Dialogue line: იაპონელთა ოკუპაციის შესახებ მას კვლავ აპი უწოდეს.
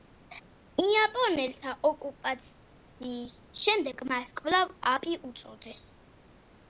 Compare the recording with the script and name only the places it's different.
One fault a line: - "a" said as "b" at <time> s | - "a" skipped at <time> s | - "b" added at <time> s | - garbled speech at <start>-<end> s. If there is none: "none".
- "შესახებ" said as "შემდეგ" at 3.6 s